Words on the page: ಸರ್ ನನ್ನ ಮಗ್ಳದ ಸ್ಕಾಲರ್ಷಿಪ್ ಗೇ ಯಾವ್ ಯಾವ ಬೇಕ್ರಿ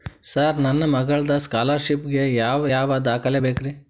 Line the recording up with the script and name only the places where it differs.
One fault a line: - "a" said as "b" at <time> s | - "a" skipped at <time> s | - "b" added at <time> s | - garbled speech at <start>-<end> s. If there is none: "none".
- "ದಾಖಲೆ" added at 3.0 s